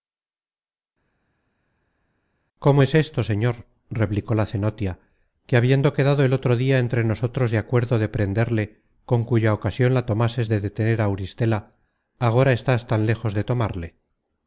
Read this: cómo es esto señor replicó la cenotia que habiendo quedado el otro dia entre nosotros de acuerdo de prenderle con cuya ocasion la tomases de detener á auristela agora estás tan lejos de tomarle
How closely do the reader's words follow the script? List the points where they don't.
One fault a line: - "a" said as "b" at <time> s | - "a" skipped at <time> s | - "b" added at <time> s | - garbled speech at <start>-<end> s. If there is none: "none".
none